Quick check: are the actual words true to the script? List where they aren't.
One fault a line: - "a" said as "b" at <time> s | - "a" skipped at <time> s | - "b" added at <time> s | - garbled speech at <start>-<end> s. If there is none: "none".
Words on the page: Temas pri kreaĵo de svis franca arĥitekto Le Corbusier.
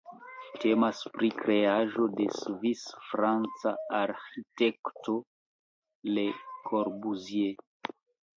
none